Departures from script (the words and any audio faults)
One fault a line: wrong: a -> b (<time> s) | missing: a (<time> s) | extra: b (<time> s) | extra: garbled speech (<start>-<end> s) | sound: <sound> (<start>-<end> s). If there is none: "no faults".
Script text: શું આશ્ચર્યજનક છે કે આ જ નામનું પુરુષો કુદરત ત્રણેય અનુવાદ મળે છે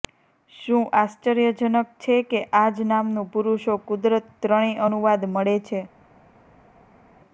no faults